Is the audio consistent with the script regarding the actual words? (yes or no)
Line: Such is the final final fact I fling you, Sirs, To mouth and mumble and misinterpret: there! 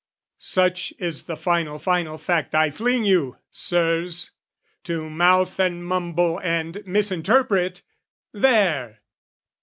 yes